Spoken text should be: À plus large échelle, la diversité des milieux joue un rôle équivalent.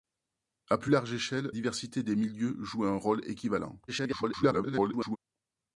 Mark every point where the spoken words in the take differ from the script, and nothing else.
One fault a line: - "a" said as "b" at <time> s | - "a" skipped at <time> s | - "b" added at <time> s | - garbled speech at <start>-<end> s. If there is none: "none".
- "la" skipped at 1.5 s
- garbled speech at 3.9-5.2 s